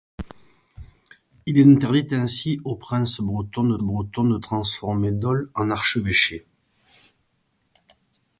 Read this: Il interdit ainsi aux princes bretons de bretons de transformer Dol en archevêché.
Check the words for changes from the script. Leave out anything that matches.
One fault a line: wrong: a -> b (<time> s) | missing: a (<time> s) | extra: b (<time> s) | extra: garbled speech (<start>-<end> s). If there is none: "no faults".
no faults